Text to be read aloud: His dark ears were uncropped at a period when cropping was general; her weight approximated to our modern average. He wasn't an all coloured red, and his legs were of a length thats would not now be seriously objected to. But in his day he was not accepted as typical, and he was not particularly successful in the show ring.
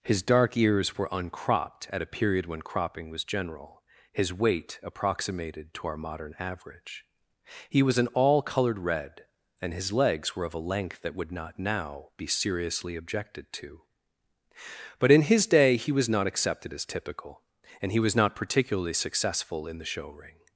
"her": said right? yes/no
no